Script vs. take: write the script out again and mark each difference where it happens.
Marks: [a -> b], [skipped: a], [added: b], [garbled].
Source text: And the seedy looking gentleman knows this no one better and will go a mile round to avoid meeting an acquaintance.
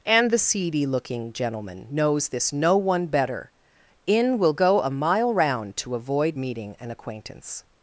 And the seedy looking gentleman knows this no one better [and -> in] will go a mile round to avoid meeting an acquaintance.